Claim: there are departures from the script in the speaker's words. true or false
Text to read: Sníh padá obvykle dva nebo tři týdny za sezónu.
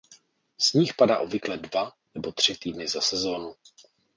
false